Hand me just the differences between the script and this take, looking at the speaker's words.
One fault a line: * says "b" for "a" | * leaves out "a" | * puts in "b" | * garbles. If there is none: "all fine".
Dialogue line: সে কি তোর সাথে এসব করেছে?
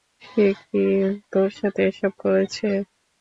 all fine